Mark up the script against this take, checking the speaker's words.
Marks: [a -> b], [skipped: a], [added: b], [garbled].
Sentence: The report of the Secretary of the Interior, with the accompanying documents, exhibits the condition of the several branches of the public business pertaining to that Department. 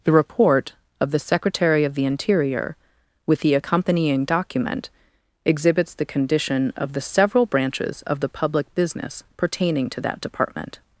The report of the Secretary of the Interior, with the accompanying [documents, -> document] exhibits the condition of the several branches of the public business pertaining to that Department.